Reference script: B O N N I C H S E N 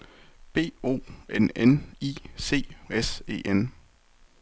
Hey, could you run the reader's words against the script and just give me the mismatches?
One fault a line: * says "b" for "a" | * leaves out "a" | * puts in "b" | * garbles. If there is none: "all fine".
* leaves out "H"